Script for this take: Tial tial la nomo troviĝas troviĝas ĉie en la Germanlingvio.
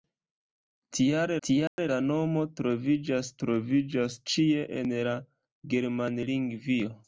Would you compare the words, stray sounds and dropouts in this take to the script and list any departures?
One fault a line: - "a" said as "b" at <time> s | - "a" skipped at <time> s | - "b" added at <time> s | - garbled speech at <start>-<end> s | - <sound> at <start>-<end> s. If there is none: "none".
- dropout at 1.7-1.8 s